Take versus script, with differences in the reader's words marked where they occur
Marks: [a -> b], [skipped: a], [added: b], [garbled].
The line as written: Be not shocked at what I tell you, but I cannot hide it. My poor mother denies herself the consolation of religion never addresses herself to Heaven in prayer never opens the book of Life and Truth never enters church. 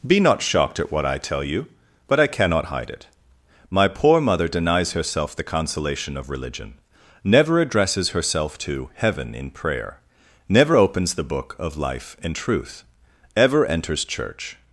Be not shocked at what I tell you, but I cannot hide it. My poor mother denies herself the consolation of religion never addresses herself to Heaven in prayer never opens the book of Life and Truth [never -> ever] enters church.